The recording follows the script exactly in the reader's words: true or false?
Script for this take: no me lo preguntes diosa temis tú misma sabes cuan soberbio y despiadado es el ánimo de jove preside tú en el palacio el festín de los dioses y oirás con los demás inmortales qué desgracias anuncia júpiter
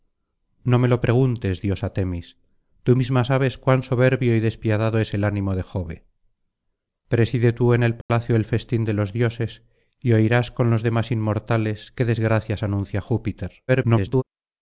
false